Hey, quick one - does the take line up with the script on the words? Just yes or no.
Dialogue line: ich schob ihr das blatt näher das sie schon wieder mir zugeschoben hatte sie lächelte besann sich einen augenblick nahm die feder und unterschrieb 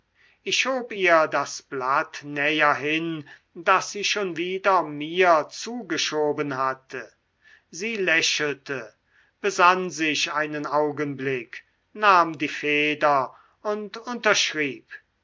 no